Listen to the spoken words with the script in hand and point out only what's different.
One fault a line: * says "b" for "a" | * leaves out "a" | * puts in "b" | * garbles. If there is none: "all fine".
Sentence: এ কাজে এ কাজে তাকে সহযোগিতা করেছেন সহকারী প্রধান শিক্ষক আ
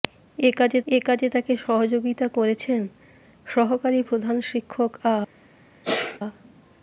all fine